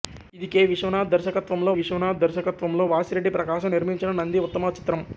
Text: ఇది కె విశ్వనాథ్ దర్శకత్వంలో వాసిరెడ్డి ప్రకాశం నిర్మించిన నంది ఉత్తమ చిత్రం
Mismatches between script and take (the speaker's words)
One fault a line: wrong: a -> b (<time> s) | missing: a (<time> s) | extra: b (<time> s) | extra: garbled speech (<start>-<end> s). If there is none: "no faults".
extra: విశ్వనాథ్ దర్శకత్వంలో (1.8 s)